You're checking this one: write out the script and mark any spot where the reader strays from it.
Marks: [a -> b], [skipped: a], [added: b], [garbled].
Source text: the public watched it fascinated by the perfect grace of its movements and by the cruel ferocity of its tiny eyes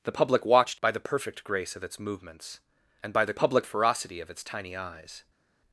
the public watched [skipped: it fascinated] by the perfect grace of its movements and by the [cruel -> public] ferocity of its tiny eyes